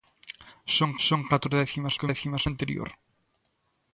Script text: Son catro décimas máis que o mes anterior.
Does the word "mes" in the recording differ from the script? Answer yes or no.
yes